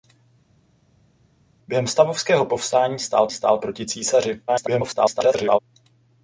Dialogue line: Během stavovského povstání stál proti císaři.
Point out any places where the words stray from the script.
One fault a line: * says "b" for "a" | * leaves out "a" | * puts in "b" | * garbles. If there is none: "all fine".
* puts in "stál"
* garbles